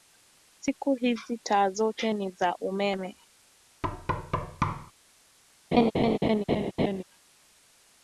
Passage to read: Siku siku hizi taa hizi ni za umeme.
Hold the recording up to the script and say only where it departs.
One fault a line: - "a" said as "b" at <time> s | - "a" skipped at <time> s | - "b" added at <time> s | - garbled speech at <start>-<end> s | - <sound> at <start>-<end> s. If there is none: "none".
- "siku" skipped at 0.9 s
- "hizi" said as "zote" at 1.7 s
- thud at 3.8-4.9 s
- laugh at 5.7-7.0 s